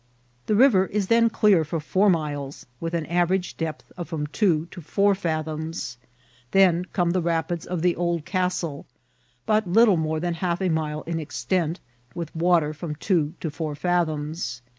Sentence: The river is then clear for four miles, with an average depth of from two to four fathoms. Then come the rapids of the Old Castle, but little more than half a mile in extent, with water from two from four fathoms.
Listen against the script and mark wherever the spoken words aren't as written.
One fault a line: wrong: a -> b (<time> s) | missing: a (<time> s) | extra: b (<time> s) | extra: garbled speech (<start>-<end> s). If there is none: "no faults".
wrong: from -> to (13.4 s)